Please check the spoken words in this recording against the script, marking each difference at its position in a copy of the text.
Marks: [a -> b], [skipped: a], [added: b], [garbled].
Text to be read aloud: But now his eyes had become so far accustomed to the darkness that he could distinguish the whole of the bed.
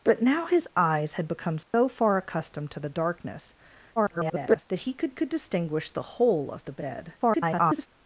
But now his eyes had become so far accustomed to the darkness [garbled] that he could [added: could] distinguish the whole of the bed. [garbled]